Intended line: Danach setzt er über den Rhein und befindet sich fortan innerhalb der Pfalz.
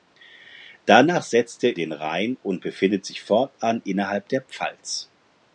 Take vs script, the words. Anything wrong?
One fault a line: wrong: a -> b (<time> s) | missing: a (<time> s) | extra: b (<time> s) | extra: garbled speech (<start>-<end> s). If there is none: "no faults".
missing: über (1.8 s)